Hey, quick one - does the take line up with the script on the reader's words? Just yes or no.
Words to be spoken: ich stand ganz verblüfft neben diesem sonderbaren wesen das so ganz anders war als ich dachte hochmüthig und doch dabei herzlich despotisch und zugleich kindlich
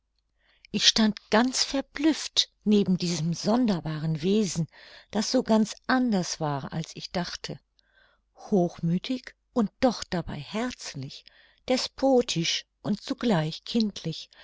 yes